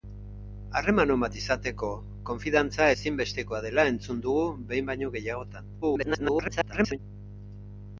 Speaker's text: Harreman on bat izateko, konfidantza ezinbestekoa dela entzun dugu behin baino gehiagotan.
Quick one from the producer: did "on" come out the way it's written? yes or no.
yes